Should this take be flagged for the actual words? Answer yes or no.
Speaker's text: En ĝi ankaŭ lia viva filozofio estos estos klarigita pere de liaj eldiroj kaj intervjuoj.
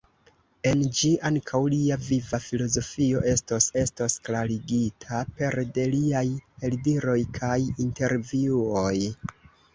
no